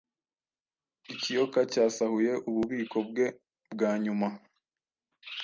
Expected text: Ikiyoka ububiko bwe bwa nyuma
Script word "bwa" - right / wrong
right